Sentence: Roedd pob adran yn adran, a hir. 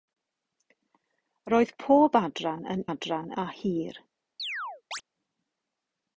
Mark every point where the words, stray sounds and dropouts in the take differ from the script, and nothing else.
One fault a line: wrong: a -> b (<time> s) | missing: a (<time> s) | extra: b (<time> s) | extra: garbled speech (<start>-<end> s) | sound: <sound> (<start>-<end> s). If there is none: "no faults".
sound: chirp (4.4-5.0 s)